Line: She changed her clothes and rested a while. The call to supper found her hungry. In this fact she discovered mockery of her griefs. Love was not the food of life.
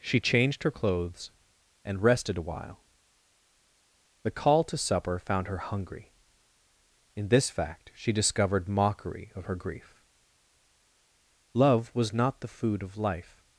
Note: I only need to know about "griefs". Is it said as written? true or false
false